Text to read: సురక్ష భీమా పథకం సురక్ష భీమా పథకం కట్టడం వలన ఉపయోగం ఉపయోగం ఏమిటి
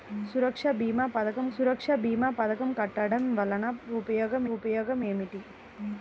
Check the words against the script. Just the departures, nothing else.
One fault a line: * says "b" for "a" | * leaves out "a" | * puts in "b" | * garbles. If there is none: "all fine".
all fine